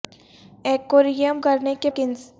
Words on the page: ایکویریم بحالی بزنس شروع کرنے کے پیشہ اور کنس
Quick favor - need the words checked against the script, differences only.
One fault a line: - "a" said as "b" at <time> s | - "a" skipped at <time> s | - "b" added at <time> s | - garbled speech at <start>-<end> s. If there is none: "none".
- "بحالی بزنس شروع" skipped at 1.4 s
- "پیشہ اور" skipped at 1.9 s